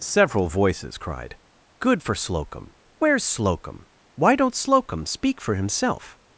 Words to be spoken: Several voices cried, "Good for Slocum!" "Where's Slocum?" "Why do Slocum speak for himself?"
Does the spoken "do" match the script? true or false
false